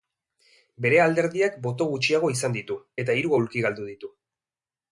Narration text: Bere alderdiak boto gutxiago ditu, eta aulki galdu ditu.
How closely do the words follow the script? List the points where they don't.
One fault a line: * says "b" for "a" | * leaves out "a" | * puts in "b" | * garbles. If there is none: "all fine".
* puts in "izan"
* puts in "hiru"